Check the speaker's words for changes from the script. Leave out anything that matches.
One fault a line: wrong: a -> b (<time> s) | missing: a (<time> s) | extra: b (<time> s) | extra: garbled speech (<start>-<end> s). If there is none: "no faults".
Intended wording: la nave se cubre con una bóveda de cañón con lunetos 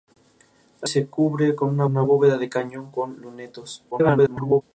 missing: nave (0.9 s)
extra: una (1.8 s)
extra: garbled speech (3.9-4.6 s)